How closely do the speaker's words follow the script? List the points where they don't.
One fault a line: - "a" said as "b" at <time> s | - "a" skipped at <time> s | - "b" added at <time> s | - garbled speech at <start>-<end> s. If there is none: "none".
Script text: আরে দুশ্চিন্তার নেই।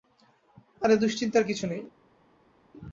- "কিছু" added at 1.5 s